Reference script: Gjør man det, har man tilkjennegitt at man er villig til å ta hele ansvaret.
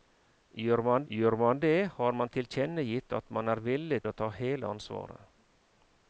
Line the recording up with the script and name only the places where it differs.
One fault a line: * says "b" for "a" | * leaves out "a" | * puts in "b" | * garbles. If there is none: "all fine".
* puts in "gjør man"
* leaves out "til"